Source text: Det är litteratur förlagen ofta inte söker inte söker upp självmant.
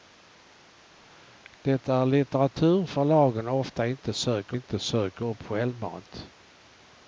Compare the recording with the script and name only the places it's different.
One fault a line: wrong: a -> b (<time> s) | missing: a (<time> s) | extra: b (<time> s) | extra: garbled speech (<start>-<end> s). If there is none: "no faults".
no faults